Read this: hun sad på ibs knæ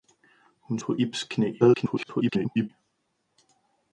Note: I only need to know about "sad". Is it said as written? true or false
false